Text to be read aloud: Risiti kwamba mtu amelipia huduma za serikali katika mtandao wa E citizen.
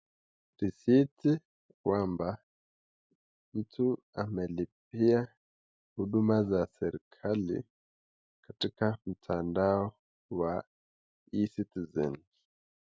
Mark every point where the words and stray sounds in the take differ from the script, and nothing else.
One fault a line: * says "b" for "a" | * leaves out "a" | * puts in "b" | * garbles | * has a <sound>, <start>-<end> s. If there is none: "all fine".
all fine